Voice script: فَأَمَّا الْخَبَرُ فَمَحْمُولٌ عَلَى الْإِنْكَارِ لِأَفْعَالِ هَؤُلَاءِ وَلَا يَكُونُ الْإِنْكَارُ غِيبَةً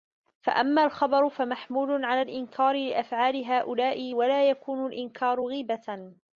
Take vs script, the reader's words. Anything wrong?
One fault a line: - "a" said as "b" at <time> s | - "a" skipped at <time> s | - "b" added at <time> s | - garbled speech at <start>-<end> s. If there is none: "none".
none